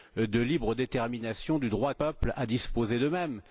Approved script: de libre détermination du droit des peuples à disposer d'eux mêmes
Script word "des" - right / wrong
wrong